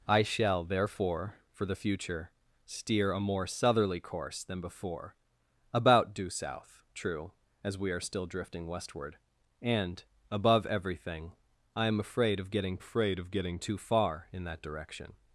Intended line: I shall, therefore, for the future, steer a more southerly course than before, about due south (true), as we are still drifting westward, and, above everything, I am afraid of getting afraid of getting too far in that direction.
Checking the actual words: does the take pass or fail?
pass